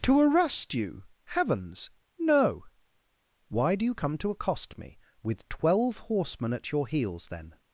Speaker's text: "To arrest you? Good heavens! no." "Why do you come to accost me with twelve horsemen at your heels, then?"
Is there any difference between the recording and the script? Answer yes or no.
yes